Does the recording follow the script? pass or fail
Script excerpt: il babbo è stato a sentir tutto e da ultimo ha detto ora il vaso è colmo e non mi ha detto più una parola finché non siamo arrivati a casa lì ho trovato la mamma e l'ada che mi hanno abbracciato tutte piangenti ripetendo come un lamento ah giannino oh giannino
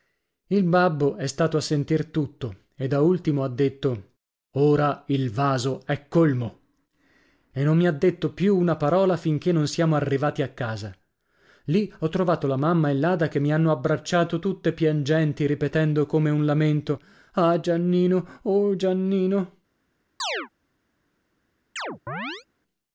pass